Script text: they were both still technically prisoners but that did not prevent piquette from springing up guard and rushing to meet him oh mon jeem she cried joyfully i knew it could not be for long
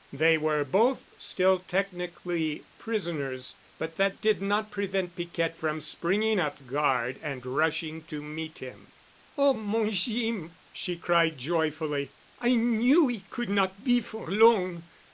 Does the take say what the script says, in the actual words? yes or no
yes